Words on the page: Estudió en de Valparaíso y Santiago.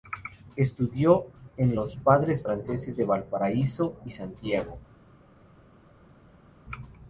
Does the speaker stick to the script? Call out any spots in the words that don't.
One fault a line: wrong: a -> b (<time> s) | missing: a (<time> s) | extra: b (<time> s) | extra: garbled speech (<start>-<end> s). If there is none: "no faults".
extra: los Padres Franceses (1.7 s)